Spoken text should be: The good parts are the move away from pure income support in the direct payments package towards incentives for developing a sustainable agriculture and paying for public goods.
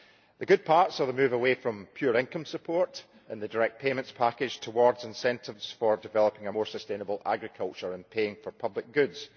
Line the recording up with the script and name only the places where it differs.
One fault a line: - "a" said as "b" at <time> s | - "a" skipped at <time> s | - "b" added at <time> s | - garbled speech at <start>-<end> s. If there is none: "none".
- "more" added at 6.5 s